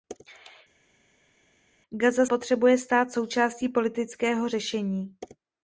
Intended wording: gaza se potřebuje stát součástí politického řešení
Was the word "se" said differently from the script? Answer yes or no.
yes